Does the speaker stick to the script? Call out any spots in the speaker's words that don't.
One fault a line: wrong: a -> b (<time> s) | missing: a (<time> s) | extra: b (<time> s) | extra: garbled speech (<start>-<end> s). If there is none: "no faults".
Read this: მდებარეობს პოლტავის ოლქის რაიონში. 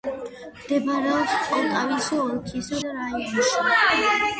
no faults